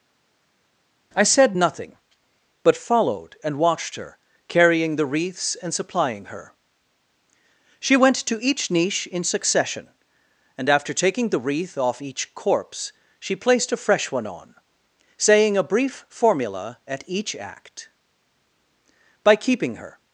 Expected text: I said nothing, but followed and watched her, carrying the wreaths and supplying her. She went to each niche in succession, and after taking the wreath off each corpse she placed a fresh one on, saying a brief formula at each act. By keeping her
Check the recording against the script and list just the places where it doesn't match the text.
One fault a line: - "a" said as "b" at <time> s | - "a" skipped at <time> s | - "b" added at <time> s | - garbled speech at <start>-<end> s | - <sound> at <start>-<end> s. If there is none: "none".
none